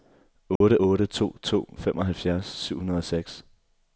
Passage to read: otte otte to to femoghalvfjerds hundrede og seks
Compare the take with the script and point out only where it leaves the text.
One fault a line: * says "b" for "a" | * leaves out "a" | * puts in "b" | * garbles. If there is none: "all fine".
* puts in "syv"